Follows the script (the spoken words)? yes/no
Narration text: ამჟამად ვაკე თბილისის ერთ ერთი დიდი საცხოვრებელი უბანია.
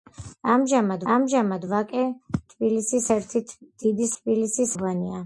no